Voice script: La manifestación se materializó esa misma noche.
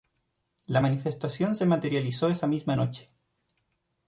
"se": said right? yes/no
yes